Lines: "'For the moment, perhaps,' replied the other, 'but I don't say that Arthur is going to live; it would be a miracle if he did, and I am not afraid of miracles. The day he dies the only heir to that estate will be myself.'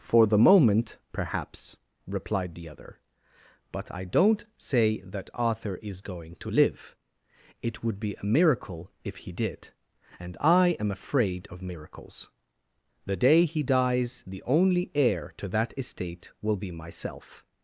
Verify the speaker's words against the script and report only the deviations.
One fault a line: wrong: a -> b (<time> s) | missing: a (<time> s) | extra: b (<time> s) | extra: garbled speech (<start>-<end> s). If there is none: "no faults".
missing: not (10.9 s)